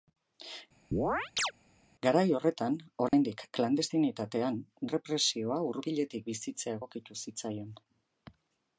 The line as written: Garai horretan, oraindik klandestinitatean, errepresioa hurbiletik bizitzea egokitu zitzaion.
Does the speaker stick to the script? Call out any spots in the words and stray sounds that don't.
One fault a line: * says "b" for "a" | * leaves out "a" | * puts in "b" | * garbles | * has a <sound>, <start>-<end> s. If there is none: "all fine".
* has a chirp, 0.9-1.5 s
* has a dropout, 3.1-3.1 s